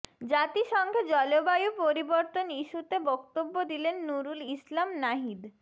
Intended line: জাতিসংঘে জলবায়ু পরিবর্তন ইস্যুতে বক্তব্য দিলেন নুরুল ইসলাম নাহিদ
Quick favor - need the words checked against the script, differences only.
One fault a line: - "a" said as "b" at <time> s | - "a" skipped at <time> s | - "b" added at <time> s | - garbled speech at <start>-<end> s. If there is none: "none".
none